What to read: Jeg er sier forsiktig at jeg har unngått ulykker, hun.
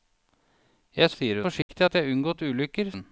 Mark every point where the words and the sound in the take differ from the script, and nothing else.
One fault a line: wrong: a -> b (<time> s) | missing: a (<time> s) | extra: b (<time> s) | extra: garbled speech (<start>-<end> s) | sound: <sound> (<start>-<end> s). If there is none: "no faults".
sound: dropout (1.6-1.7 s)